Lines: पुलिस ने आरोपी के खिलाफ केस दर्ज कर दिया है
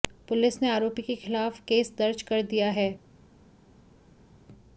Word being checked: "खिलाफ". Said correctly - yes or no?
yes